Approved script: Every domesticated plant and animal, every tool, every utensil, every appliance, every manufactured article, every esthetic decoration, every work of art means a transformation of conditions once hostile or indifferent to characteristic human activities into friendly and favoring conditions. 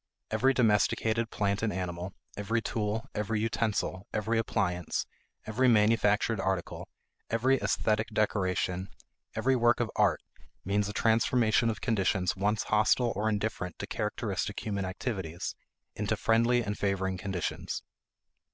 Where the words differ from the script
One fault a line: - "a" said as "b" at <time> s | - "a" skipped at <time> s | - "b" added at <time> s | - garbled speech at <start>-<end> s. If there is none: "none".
none